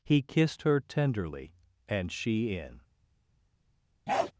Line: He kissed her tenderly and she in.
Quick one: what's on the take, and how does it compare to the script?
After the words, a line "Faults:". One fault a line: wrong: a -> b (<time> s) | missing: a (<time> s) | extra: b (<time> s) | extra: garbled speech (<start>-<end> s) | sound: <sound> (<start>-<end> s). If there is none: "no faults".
He kissed her tenderly and she in.
Faults:
sound: bark (4.1-4.3 s)